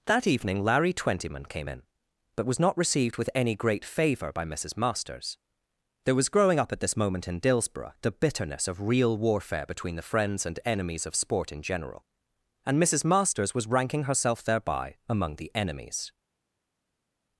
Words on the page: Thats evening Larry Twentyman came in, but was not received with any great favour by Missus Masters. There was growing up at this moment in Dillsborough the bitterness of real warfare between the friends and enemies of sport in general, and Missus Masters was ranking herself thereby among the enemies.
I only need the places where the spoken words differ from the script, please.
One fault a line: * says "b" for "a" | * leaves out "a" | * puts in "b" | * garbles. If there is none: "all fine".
* says "That" for "Thats"